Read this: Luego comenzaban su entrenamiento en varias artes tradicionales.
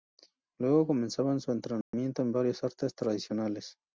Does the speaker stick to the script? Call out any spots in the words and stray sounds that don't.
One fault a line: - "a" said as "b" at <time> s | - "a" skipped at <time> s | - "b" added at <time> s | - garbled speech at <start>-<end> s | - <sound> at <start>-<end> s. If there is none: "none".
- dropout at 1.8-1.9 s